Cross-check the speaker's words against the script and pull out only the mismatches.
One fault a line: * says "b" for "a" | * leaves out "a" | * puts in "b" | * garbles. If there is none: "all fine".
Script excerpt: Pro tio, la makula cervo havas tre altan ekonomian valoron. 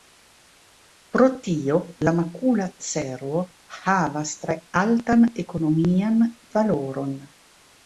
all fine